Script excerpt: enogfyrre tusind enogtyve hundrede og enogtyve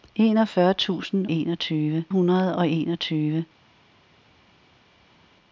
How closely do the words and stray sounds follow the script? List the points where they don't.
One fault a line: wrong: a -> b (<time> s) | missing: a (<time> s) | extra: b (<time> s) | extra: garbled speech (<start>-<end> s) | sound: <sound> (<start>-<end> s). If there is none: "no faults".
no faults